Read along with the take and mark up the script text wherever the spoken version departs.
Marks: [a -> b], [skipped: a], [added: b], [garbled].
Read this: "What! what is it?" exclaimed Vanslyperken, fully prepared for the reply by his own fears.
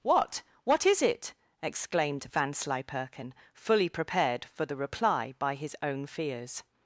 "What! what is it?" exclaimed Vanslyperken, fully prepared for the reply by his own fears.